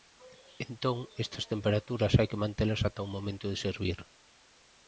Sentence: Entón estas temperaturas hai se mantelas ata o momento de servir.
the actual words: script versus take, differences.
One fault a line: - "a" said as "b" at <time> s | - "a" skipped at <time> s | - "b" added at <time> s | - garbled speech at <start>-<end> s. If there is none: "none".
- "se" said as "que" at 2.3 s